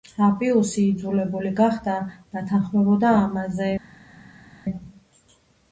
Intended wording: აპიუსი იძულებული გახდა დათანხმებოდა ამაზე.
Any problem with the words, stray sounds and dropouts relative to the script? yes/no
no